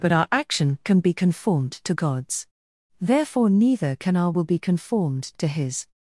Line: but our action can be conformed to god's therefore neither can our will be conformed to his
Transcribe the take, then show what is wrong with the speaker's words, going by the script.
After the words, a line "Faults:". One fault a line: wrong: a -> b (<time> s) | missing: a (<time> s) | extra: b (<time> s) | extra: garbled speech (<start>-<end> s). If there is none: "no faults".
but our action can be conformed to god's therefore neither can our will be conformed to his
Faults:
no faults